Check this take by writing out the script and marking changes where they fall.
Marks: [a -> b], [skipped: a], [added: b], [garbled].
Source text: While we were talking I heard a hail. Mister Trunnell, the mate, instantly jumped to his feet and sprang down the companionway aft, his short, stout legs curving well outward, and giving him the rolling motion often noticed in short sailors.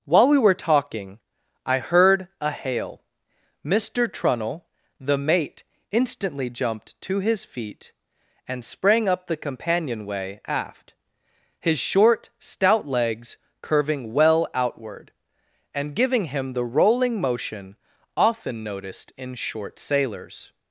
While we were talking I heard a hail. Mister Trunnell, the mate, instantly jumped to his feet and sprang [down -> up] the companionway aft, his short, stout legs curving well outward, and giving him the rolling motion often noticed in short sailors.